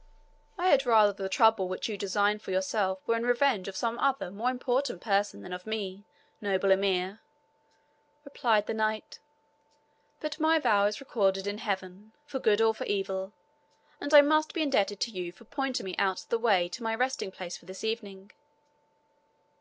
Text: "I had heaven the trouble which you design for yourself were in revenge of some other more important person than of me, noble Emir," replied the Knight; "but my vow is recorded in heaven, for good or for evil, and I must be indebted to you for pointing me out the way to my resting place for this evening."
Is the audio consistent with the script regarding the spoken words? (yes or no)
no